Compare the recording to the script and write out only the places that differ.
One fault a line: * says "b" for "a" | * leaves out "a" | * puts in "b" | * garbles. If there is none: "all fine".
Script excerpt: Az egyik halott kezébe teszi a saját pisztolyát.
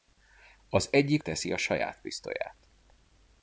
* leaves out "halott kezébe"